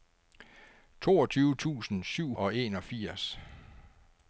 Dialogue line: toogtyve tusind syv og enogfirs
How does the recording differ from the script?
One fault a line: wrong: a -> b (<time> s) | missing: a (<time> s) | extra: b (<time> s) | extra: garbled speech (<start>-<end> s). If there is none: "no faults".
no faults